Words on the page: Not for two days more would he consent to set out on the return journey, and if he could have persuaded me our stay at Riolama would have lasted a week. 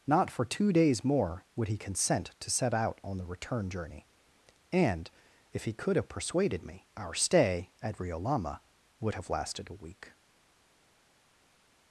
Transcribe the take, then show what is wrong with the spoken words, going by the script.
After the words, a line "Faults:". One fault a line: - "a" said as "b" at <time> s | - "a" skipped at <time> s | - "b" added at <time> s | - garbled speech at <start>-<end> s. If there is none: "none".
Not for two days more would he consent to set out on the return journey, and if he could have persuaded me our stay at Riolama would have lasted a week.
Faults:
none